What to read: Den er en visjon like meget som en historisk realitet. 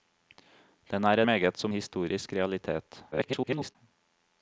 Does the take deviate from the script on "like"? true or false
true